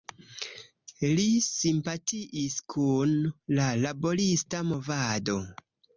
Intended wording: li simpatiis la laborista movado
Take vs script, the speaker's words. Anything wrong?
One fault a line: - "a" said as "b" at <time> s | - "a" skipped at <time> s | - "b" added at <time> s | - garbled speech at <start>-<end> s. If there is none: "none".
- "kun" added at 2.8 s